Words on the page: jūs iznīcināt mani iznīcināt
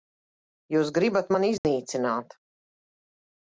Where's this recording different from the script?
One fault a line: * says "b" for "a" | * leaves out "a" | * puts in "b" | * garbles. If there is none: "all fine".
* says "gribat" for "iznīcināt"